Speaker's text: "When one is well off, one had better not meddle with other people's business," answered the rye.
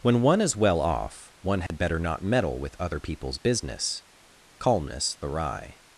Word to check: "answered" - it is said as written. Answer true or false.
false